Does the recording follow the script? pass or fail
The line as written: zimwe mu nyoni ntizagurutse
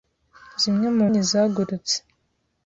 fail